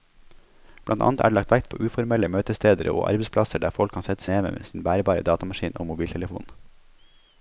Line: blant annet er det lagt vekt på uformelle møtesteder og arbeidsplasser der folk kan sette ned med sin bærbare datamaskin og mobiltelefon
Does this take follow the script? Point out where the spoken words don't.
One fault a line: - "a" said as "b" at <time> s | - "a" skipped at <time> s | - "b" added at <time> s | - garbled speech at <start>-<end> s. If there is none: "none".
none